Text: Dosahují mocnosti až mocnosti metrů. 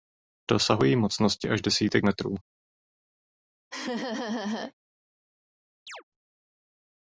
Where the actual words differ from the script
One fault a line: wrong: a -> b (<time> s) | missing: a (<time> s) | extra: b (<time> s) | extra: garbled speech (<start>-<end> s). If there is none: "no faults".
wrong: mocnosti -> desítek (1.6 s)